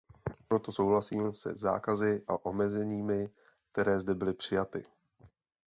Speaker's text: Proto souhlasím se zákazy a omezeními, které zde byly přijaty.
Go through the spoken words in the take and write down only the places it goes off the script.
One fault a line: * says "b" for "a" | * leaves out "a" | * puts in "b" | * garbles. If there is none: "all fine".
all fine